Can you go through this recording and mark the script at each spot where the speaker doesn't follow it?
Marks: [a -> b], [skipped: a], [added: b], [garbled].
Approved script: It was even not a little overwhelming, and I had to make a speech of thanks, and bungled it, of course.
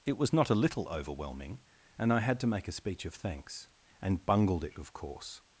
It was [skipped: even] not a little overwhelming, and I had to make a speech of thanks, and bungled it, of course.